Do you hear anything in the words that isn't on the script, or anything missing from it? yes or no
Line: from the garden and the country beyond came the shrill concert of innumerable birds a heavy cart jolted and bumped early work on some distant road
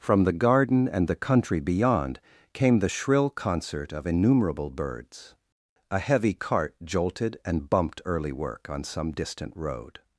no